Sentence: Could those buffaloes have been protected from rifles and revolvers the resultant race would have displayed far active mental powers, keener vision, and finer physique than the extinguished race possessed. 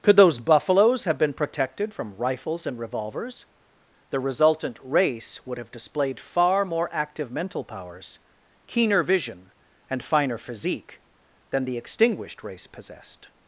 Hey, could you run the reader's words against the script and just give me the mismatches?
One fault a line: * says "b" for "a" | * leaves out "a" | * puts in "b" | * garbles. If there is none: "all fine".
* puts in "more"